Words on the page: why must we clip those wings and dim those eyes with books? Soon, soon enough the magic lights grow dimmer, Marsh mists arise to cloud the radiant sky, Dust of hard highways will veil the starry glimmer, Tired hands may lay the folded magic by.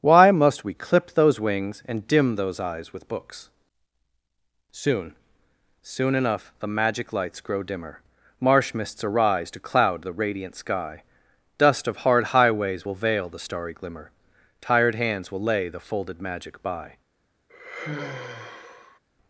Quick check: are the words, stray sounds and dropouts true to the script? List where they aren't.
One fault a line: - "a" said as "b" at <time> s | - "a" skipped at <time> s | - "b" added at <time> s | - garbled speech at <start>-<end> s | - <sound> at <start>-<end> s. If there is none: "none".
- "may" said as "will" at 15.3 s
- sigh at 17.5-19.0 s